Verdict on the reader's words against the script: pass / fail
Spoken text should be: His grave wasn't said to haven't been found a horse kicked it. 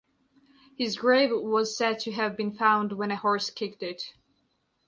fail